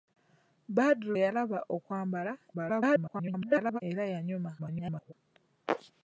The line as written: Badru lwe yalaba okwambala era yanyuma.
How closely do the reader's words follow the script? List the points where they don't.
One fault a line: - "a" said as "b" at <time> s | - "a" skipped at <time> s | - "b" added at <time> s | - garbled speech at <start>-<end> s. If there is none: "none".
- "lwe" skipped at 1.1 s
- garbled speech at 2.5-3.8 s
- garbled speech at 4.6-5.1 s